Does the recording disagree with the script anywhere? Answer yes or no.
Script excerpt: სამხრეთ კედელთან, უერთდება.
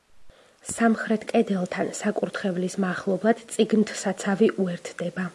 yes